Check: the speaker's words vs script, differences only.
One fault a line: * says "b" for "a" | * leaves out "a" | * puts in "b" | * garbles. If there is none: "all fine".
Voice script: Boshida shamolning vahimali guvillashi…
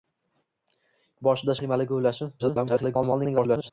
* leaves out "shamolning"
* garbles